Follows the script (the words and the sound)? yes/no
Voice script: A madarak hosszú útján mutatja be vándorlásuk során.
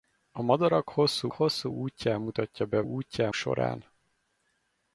no